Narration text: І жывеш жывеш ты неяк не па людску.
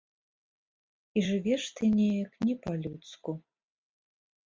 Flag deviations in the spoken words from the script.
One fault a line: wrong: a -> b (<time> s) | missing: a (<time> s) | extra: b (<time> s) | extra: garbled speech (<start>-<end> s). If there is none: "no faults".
missing: жывеш (1.6 s)